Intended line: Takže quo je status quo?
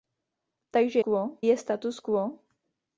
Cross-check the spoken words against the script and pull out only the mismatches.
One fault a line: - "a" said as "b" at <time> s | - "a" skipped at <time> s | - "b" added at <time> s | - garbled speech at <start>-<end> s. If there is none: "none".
none